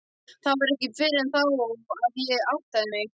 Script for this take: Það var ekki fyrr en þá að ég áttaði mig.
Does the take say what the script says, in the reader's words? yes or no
yes